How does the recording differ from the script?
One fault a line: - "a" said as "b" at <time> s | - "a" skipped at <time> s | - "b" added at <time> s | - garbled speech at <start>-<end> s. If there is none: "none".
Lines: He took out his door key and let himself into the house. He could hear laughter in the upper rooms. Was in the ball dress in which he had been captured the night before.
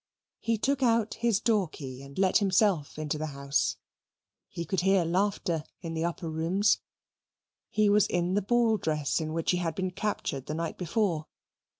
- "He" added at 7.7 s